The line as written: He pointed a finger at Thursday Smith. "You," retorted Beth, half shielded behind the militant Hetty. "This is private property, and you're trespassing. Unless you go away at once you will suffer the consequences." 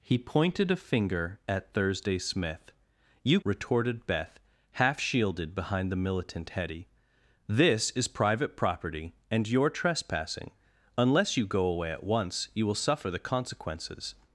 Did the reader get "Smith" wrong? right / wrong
right